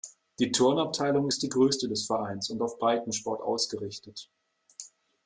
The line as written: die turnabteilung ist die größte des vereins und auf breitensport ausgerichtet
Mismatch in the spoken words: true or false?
false